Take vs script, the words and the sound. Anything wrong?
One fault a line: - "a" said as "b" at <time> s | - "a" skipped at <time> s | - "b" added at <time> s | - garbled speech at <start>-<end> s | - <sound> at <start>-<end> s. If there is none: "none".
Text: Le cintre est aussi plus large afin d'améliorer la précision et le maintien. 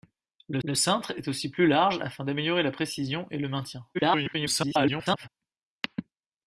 - "le" added at 0.6 s
- garbled speech at 3.9-5.3 s